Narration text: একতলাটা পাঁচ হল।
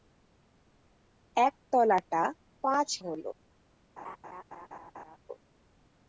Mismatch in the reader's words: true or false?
false